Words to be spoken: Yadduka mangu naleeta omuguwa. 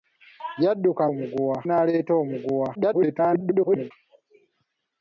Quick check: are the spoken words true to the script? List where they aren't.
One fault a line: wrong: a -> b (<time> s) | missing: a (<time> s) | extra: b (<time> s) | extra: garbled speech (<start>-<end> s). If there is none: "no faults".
wrong: mangu -> omuguwa (1.1 s)
extra: garbled speech (2.7-3.9 s)